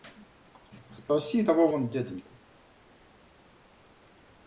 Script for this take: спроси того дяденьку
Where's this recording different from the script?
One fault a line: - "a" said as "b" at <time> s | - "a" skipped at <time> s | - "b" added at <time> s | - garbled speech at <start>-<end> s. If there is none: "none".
- "вон" added at 1.7 s